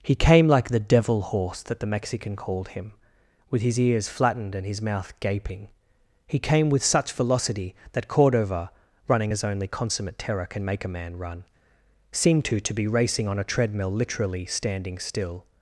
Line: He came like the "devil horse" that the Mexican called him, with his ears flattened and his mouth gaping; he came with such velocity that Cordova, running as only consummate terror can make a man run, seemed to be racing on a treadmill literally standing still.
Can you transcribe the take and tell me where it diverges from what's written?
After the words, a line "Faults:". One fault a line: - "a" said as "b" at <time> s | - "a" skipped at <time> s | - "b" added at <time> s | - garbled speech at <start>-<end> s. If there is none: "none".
He came like the "devil horse" that the Mexican called him, with his ears flattened and his mouth gaping; he came with such velocity that Cordova, running as only consummate terror can make a man run, seemed to to be racing on a treadmill literally standing still.
Faults:
- "to" added at 12.6 s